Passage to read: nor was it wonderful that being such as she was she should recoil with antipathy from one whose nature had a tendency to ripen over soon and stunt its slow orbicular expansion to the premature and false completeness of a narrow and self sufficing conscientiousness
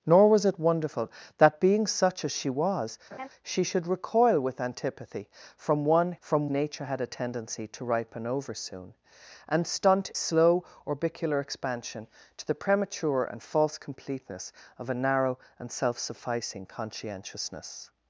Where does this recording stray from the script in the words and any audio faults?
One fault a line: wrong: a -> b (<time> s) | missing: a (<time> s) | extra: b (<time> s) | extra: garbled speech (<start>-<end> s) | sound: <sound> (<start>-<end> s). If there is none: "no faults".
sound: laugh (3.1-3.3 s)
wrong: whose -> from (6.2 s)
missing: its (10.1 s)